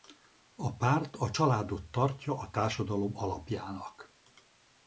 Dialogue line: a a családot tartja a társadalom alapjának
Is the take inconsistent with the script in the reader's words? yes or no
yes